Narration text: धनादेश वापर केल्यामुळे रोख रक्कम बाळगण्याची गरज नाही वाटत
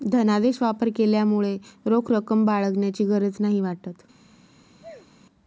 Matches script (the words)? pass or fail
pass